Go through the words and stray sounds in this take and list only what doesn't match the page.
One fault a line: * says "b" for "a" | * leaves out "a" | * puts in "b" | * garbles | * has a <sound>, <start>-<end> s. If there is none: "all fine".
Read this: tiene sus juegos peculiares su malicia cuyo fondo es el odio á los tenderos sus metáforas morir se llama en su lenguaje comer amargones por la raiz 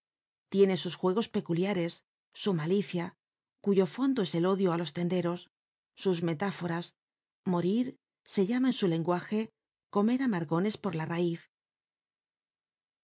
all fine